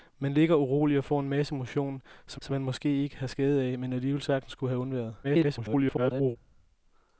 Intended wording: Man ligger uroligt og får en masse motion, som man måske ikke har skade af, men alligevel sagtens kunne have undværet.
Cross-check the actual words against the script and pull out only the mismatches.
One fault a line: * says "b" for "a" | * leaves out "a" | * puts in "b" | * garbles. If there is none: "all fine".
* puts in "som"
* garbles